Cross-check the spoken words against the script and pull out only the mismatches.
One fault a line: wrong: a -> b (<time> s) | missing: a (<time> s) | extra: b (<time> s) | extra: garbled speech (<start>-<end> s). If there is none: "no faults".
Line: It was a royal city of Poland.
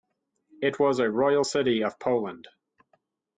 no faults